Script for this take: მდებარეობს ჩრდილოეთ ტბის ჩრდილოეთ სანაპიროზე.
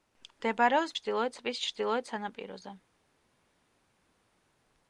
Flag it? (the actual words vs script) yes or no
no